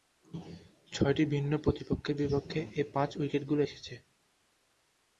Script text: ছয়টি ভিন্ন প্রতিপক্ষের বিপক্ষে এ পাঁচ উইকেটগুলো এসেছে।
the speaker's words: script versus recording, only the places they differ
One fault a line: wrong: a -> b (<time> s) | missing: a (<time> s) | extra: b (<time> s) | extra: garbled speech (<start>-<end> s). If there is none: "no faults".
no faults